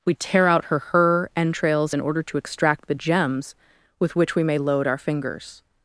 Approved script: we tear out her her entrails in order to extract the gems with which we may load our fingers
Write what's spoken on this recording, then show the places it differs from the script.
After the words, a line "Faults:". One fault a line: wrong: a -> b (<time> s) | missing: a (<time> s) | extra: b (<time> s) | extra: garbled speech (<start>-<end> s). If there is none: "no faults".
we tear out her her entrails in order to extract the gems with which we may load our fingers
Faults:
no faults